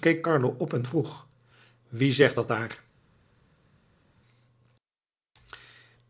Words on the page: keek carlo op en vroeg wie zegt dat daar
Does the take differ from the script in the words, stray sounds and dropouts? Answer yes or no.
no